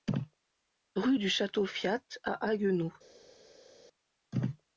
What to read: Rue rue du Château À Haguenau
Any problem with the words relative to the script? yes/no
yes